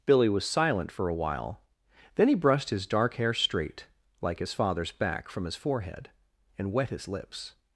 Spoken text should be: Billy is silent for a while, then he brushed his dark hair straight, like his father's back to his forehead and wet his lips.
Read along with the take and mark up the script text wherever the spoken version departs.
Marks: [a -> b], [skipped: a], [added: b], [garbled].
Billy [is -> was] silent for a while, then he brushed his dark hair straight, like his father's back [to -> from] his forehead and wet his lips.